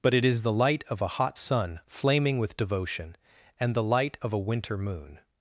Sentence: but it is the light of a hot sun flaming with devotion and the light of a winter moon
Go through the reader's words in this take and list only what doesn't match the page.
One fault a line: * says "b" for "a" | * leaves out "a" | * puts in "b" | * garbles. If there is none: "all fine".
all fine